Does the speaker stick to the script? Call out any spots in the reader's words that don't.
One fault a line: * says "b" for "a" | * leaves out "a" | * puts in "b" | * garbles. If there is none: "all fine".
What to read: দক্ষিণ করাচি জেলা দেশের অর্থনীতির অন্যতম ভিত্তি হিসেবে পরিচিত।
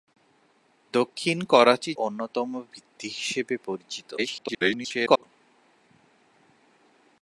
* leaves out "জেলা দেশের অর্থনীতির"
* garbles